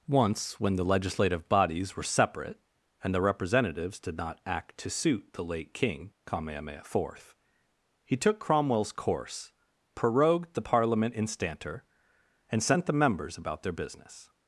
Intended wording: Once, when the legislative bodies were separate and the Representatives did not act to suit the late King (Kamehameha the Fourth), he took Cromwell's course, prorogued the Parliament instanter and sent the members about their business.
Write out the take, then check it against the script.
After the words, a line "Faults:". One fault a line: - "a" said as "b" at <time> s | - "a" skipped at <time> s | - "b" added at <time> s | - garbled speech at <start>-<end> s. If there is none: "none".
Once, when the legislative bodies were separate and the Representatives did not act to suit the late King (Kamehameha the Fourth), he took Cromwell's course, prorogued the Parliament instanter and sent the members about their business.
Faults:
none